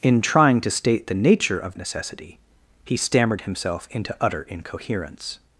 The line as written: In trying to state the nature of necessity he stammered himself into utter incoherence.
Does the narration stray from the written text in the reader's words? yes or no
no